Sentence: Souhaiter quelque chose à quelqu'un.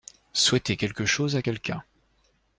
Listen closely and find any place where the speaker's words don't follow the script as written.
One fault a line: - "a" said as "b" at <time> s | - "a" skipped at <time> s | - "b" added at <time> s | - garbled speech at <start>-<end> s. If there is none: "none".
none